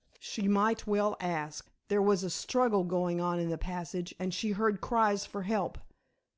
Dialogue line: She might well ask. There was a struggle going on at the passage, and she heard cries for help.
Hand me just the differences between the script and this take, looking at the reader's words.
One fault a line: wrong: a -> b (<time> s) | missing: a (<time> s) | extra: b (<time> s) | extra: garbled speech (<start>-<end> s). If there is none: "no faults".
wrong: at -> in (3.4 s)